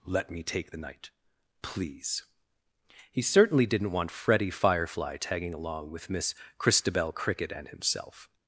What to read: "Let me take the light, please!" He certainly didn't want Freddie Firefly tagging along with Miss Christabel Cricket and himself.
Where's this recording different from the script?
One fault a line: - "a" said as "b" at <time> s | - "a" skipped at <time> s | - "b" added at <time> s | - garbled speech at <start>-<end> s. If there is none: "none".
- "light" said as "night" at 0.8 s